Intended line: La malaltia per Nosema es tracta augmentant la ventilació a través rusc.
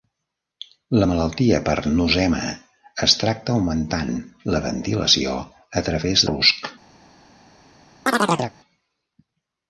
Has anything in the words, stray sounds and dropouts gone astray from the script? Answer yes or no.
yes